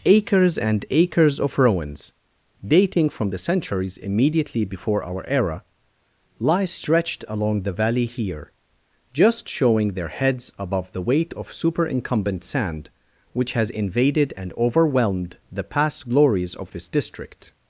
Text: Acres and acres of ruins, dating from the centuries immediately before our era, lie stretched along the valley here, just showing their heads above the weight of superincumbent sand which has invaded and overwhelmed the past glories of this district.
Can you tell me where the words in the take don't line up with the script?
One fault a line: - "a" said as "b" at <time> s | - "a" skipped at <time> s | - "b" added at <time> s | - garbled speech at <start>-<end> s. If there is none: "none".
none